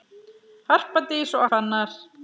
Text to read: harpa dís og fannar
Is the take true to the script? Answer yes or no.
yes